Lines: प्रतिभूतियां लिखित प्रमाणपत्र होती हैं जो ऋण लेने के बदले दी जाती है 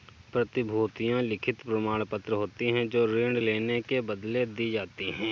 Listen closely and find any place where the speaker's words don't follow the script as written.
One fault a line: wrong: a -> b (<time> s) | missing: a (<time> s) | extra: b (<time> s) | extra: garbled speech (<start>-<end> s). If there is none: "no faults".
no faults